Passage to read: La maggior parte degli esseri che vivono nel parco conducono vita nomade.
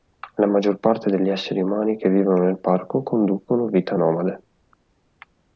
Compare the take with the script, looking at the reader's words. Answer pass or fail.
fail